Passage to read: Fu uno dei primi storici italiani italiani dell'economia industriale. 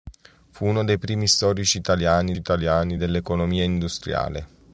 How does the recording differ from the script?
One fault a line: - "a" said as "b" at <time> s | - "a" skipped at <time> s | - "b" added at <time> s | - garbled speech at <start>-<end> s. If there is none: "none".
none